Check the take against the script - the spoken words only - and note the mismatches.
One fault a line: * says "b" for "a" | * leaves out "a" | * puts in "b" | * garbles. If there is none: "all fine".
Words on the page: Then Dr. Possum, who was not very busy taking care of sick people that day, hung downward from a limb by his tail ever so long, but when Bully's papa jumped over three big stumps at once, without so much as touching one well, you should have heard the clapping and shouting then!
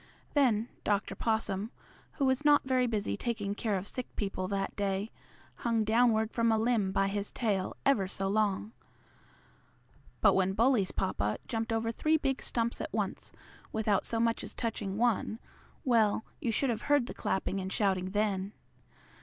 all fine